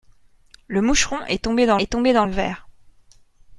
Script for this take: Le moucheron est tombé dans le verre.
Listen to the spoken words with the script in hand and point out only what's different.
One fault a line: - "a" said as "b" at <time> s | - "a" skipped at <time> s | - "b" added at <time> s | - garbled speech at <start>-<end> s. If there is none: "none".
- "est tombé dans" added at 1.8 s